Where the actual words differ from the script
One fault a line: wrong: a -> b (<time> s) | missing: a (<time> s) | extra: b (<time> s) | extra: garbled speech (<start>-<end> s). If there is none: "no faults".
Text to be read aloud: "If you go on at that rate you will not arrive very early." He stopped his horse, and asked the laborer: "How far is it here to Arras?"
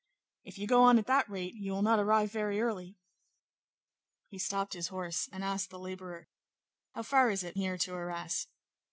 no faults